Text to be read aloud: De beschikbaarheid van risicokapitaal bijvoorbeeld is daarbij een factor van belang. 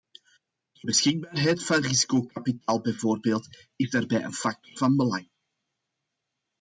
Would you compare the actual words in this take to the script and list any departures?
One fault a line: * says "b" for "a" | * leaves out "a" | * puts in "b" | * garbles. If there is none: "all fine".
all fine